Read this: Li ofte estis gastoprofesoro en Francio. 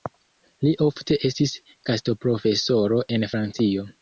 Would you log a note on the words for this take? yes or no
no